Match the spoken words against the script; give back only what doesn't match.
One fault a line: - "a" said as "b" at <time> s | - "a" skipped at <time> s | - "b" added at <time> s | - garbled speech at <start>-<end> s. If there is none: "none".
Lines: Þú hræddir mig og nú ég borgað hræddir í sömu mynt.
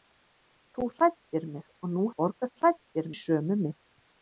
none